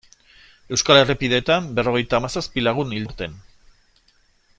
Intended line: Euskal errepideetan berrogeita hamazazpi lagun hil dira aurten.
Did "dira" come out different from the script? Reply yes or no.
yes